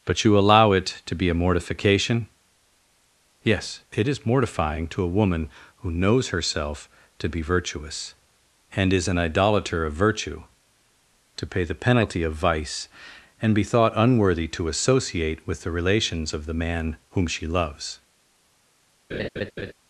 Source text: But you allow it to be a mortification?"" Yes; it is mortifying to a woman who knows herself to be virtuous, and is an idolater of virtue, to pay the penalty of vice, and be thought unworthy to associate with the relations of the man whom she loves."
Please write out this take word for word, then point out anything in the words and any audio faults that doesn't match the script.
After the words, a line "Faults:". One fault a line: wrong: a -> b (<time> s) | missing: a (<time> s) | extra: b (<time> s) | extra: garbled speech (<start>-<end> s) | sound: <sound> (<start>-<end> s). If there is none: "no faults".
But you allow it to be a mortification?"" Yes; it is mortifying to a woman who knows herself to be virtuous, and is an idolater of virtue, to pay the penalty of vice, and be thought unworthy to associate with the relations of the man whom she loves."
Faults:
sound: laugh (19.1-19.7 s)